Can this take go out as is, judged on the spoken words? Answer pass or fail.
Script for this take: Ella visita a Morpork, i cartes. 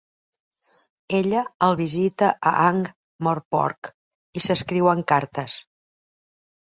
fail